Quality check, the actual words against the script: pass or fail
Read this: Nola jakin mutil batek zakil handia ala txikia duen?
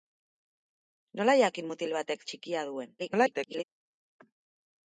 fail